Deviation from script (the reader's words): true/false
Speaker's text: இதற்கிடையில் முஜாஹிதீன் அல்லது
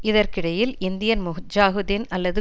true